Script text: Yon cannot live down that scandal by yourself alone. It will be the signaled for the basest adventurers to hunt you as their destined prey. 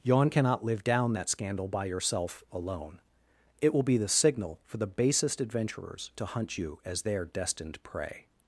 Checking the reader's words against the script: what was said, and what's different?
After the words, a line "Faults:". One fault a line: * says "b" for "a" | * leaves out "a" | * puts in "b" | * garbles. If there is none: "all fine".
Yon cannot live down that scandal by yourself alone. It will be the signal for the basest adventurers to hunt you as their destined prey.
Faults:
* says "signal" for "signaled"